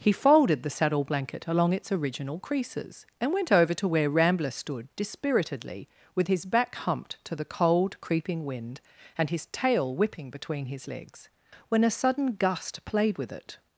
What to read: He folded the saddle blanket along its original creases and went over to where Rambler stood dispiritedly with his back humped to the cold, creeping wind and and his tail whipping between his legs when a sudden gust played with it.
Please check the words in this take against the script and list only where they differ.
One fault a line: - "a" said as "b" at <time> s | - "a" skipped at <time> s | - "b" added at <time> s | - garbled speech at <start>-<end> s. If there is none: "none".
- "and" skipped at 9.3 s